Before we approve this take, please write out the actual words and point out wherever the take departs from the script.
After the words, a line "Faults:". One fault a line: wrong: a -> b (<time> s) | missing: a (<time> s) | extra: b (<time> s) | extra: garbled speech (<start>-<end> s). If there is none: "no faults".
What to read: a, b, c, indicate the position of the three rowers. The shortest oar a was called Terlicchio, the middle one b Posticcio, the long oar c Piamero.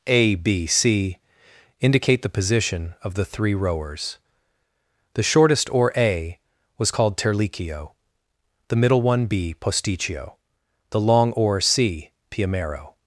a, b, c, indicate the position of the three rowers. The shortest oar a was called Terlicchio, the middle one b Posticcio, the long oar c Piamero.
Faults:
no faults